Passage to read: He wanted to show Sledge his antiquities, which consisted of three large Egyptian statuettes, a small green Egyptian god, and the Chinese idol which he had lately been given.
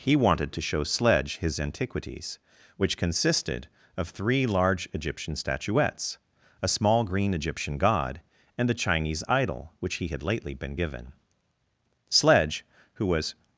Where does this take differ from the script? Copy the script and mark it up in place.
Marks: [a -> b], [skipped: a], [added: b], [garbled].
He wanted to show Sledge his antiquities, which consisted of three large Egyptian statuettes, a small green Egyptian god, and the Chinese idol which he had lately been given. [added: Sledge who was]